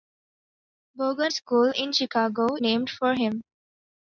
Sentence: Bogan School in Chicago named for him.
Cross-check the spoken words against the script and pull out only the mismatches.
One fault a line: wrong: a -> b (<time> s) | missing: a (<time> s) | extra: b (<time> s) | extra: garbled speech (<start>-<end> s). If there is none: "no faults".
no faults